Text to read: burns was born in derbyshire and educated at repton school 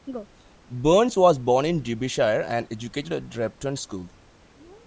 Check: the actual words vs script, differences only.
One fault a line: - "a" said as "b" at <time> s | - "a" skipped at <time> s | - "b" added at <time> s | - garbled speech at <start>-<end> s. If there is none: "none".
none